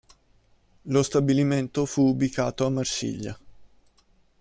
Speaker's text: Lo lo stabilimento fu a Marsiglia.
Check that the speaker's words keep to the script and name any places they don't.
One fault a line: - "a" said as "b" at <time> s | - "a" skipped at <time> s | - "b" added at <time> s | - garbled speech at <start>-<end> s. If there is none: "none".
- "lo" skipped at 1.0 s
- "ubicato" added at 2.1 s